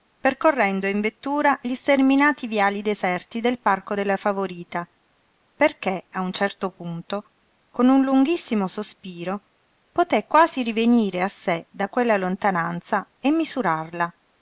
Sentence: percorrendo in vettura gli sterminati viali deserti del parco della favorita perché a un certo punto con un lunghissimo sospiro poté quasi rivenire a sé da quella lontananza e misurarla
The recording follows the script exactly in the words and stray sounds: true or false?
true